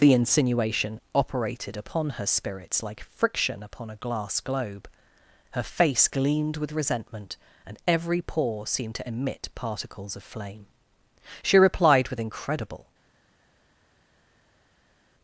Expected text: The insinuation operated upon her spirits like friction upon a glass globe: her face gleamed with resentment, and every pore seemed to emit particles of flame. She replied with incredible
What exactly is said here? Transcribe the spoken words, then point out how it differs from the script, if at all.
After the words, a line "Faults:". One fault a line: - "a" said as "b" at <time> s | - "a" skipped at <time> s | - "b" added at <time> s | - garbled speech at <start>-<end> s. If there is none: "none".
The insinuation operated upon her spirits like friction upon a glass globe: her face gleamed with resentment, and every pore seemed to emit particles of flame. She replied with incredible
Faults:
none